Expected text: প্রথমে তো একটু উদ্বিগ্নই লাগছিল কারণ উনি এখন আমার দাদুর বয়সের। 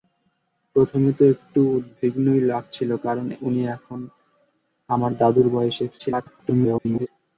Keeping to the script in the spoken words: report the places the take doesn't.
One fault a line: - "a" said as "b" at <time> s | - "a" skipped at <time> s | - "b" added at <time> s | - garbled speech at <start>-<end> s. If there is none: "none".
- garbled speech at 6.0-7.1 s